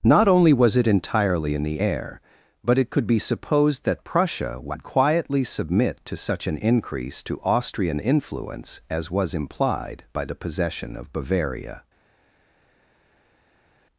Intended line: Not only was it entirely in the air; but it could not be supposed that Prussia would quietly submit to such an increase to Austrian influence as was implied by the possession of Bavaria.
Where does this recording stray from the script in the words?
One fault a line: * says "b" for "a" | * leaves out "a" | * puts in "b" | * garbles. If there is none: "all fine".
* leaves out "not"